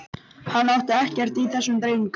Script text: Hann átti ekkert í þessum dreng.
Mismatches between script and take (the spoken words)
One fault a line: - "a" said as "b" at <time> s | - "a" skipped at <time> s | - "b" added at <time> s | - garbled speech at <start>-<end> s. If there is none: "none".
none